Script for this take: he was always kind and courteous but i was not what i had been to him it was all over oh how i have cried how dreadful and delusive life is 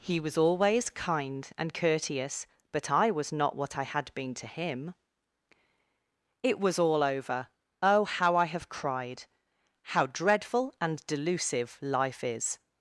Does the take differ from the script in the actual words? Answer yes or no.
no